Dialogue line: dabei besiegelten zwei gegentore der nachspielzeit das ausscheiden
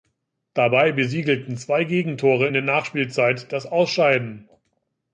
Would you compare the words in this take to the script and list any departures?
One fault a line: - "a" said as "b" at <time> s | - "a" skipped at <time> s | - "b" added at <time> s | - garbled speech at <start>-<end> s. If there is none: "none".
none